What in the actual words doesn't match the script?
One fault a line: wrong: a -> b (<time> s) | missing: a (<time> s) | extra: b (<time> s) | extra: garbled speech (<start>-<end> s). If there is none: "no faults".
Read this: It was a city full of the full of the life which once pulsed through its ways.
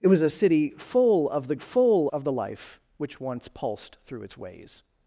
no faults